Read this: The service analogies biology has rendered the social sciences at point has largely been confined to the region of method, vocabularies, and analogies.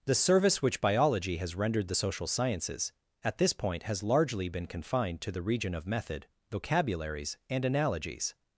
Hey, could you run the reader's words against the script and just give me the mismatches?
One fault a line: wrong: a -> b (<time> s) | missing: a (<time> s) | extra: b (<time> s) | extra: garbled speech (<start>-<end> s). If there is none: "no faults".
wrong: analogies -> which (0.6 s)
extra: this (3.4 s)